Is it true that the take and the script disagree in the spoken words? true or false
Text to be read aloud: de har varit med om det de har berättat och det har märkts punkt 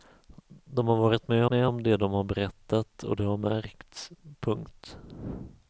true